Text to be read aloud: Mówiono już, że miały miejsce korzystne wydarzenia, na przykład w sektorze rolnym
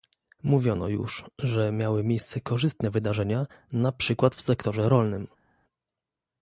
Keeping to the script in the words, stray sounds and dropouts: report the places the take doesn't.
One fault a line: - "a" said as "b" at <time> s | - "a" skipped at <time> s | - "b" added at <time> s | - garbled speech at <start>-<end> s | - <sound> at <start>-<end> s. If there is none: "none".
none